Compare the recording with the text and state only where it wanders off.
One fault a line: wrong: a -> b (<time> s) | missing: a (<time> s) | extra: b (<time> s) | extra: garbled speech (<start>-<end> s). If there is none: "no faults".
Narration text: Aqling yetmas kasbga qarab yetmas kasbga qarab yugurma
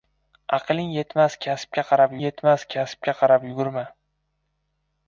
no faults